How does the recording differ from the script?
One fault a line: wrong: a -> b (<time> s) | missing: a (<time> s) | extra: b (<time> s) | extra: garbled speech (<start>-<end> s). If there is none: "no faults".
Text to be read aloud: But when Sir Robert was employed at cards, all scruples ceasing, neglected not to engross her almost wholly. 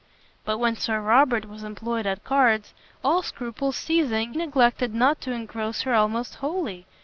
no faults